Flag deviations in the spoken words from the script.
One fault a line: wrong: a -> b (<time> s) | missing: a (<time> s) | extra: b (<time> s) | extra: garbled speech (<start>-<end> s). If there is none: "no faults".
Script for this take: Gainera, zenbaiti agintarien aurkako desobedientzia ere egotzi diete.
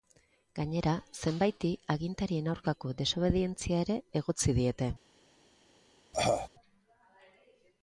no faults